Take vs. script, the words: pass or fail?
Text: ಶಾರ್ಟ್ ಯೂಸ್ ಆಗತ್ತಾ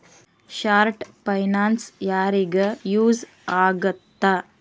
fail